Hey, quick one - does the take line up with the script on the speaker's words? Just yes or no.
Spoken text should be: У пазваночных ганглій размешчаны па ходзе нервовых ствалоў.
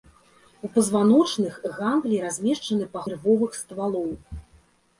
no